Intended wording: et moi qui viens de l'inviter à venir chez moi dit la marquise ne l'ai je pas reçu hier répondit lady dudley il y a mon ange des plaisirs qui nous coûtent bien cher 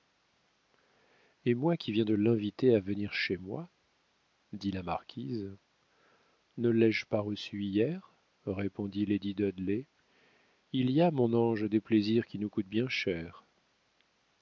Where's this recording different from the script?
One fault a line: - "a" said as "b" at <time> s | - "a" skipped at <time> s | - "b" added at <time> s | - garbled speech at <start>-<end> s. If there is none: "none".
none